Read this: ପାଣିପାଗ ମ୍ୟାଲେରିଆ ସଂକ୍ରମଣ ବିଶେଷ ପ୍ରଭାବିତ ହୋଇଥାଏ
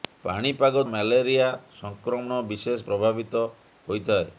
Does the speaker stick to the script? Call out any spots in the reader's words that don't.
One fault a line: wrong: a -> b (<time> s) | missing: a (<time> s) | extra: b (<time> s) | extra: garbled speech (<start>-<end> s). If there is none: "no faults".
no faults